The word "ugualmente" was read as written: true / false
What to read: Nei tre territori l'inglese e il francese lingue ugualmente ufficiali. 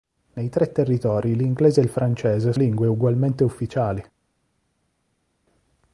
true